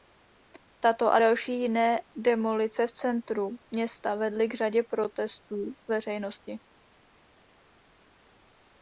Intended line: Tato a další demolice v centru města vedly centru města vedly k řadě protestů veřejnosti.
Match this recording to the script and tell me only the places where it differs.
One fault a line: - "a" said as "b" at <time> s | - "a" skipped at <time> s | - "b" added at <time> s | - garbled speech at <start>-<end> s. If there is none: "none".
- "jiné" added at 1.6 s
- "centru města vedly" skipped at 4.5 s